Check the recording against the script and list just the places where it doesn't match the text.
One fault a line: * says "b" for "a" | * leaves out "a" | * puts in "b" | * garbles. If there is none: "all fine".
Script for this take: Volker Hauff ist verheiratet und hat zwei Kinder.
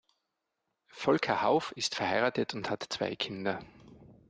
all fine